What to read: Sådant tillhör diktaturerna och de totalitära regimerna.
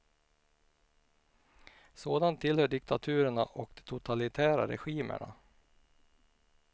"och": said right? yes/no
yes